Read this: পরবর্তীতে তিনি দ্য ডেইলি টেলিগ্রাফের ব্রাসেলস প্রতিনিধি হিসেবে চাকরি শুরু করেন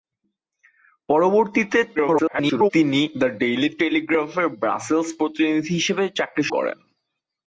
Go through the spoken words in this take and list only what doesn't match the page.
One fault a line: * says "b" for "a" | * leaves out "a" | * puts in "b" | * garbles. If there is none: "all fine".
* garbles
* leaves out "শুরু"